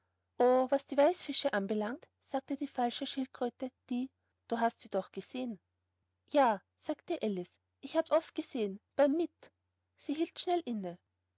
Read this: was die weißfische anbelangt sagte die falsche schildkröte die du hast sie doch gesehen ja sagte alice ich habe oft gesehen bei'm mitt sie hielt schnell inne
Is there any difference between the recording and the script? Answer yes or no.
no